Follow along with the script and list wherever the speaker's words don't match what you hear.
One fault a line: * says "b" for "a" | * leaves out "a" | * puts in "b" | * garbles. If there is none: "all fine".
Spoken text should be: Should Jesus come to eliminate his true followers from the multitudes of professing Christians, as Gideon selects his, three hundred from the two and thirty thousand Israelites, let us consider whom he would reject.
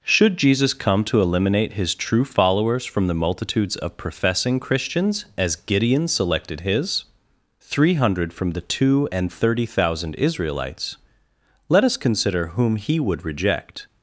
* says "selected" for "selects"